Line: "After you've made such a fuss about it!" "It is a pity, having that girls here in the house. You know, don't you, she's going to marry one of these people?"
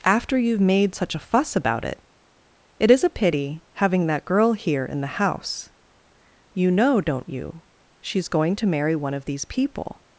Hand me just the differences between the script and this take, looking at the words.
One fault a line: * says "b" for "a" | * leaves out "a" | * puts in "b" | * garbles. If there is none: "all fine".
* says "girl" for "girls"